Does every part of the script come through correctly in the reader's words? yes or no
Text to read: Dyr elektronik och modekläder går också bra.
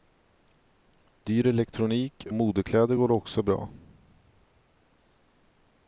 no